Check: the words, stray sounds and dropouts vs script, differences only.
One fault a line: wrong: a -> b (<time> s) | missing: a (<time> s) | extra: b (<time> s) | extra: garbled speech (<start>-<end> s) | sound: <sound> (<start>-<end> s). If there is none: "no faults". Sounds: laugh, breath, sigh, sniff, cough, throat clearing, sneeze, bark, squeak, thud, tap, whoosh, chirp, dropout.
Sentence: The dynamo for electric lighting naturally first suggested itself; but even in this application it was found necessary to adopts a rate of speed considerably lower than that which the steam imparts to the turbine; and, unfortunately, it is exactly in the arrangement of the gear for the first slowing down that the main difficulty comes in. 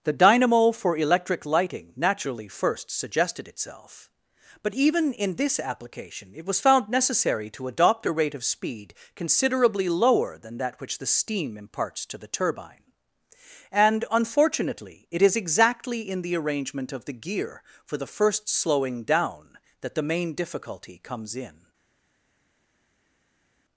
wrong: adopts -> adopt (7.7 s)